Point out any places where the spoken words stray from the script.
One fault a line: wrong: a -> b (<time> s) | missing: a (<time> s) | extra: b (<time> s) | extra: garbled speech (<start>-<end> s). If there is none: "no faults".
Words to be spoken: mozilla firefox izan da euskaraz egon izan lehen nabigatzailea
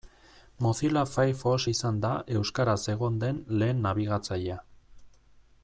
wrong: izan -> den (3.3 s)